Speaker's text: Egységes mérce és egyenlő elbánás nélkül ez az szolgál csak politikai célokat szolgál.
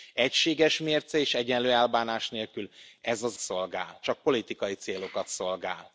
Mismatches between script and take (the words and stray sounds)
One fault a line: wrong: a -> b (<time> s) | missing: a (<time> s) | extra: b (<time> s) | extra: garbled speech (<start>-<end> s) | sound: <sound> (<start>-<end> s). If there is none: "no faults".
no faults